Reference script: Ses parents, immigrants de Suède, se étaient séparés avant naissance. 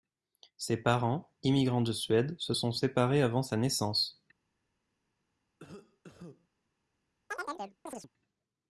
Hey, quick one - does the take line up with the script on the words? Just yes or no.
no